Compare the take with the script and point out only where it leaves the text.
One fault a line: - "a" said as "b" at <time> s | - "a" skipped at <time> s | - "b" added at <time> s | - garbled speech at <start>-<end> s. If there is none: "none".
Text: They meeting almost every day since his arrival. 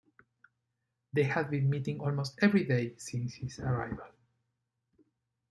- "had been" added at 1.2 s